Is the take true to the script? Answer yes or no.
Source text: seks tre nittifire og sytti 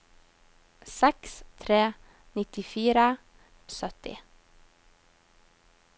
yes